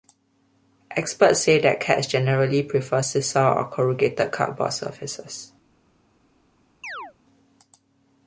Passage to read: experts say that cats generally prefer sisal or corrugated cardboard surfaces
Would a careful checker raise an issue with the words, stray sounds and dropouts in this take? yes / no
yes